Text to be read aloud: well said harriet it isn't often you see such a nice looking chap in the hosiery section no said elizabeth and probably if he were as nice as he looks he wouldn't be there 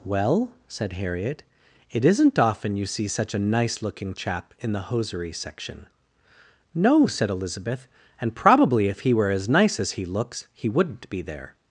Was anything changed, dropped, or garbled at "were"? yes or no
no